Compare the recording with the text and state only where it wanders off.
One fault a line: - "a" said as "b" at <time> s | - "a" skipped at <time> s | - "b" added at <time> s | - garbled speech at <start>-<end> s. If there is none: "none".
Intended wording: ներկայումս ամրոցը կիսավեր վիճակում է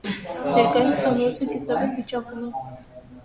none